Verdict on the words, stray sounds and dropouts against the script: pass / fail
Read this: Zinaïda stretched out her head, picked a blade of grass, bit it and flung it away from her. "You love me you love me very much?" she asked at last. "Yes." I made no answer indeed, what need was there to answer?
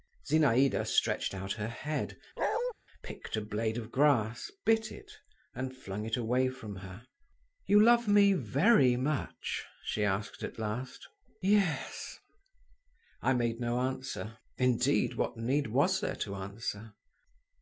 fail